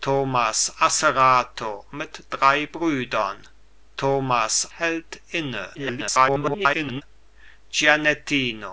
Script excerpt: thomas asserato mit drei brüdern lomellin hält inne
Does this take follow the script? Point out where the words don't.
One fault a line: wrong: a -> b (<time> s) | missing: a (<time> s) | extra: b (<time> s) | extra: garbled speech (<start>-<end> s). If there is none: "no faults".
wrong: lomellin -> thomas (4.0 s)
extra: garbled speech (5.8-7.0 s)